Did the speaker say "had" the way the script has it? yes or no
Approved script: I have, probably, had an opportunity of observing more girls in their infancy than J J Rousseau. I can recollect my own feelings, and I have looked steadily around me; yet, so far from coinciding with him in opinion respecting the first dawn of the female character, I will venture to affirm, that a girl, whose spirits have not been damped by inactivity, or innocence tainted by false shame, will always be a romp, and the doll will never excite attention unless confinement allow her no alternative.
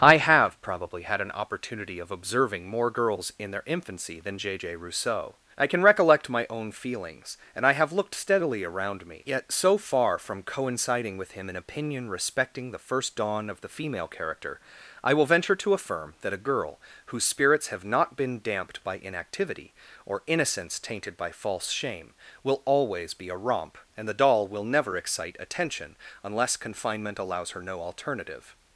yes